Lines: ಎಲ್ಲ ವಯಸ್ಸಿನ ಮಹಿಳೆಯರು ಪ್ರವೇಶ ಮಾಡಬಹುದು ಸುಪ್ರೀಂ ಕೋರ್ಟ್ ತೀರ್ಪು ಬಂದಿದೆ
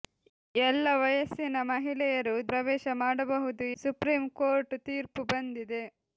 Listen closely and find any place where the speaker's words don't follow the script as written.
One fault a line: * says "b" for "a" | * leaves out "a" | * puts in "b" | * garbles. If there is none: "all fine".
all fine